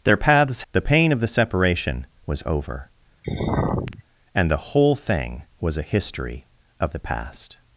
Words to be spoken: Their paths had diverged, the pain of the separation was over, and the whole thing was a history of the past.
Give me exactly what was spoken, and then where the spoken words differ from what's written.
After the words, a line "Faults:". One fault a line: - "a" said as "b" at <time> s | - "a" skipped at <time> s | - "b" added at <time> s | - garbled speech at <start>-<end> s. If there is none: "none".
Their paths the pain of the separation was over, and the whole thing was a history of the past.
Faults:
- "had diverged" skipped at 0.6 s